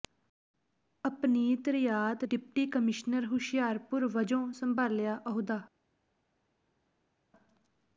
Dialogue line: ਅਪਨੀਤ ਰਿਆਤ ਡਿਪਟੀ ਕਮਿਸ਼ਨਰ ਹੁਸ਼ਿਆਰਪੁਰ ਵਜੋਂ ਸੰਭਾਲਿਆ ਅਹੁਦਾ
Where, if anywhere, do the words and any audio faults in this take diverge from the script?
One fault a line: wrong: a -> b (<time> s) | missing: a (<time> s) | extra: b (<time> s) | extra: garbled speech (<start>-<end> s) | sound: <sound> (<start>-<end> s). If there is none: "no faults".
no faults